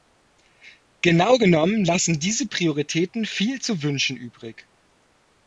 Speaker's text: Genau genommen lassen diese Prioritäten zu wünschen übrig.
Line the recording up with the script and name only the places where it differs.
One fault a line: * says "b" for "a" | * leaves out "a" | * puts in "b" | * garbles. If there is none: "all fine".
* puts in "viel"